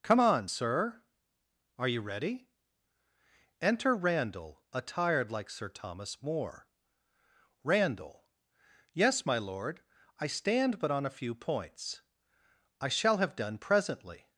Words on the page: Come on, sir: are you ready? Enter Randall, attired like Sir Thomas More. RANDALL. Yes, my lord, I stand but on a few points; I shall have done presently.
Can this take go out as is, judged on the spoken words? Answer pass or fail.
pass